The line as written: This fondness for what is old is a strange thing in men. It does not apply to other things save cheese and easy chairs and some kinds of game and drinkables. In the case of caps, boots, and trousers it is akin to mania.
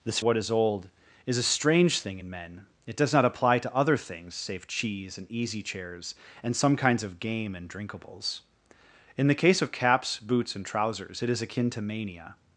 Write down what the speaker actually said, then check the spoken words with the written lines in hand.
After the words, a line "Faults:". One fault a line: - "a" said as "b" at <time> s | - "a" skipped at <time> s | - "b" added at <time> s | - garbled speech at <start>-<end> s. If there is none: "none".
This what is old is a strange thing in men. It does not apply to other things save cheese and easy chairs and some kinds of game and drinkables. In the case of caps, boots, and trousers it is akin to mania.
Faults:
- "fondness for" skipped at 0.2 s